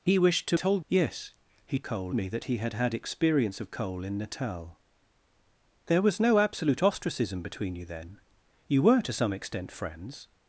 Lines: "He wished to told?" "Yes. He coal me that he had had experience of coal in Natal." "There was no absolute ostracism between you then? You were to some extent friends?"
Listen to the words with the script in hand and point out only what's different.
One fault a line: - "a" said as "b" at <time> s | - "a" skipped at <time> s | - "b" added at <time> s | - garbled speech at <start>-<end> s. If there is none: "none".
none